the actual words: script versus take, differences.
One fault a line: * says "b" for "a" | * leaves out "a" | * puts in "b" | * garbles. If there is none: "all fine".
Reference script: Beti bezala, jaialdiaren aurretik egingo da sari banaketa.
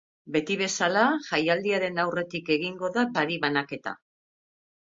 all fine